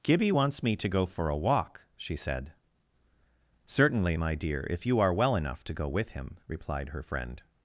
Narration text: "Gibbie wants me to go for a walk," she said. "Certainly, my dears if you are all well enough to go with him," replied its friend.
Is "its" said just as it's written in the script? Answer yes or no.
no